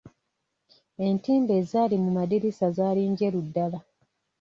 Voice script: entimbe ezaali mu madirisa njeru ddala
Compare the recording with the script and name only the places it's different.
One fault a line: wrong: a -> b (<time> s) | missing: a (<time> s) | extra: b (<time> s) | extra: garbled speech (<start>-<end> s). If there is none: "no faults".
extra: zaali (2.7 s)